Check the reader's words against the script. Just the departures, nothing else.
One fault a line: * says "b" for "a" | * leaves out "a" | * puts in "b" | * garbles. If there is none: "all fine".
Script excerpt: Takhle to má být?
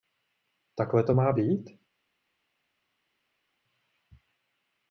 all fine